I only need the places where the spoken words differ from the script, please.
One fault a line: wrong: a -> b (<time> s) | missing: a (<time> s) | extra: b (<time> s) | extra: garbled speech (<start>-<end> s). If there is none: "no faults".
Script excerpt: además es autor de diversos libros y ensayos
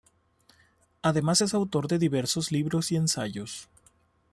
no faults